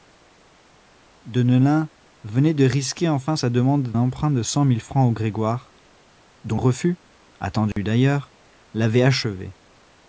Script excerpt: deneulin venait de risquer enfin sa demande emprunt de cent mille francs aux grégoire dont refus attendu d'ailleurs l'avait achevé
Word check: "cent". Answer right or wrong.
right